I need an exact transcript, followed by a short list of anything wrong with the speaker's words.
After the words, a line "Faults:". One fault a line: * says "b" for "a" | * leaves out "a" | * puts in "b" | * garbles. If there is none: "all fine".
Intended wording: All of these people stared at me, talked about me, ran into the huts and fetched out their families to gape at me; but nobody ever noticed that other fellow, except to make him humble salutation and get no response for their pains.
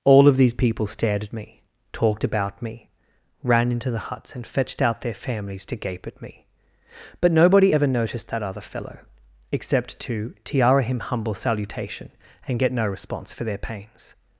All of these people stared at me, talked about me, ran into the huts and fetched out their families to gape at me; but nobody ever noticed that other fellow, except to tiara him humble salutation and get no response for their pains.
Faults:
* says "tiara" for "make"